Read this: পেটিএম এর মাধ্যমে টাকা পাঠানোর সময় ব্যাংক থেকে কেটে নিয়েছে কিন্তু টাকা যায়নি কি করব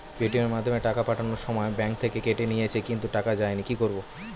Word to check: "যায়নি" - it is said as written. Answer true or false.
true